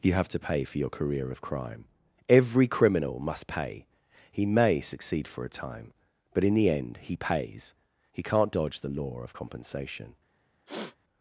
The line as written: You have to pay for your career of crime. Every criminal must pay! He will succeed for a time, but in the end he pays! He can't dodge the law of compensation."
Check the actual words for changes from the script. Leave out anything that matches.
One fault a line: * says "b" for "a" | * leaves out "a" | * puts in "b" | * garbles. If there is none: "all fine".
* says "may" for "will"